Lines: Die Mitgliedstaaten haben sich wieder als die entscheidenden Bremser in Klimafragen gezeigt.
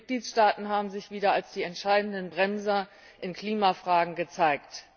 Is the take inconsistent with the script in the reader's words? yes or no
no